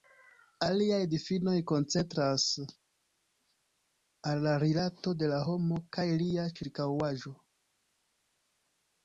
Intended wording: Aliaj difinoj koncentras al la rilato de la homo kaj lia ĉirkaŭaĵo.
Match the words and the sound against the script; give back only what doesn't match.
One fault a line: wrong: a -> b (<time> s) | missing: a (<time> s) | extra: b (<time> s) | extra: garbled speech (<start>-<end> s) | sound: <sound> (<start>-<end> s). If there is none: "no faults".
no faults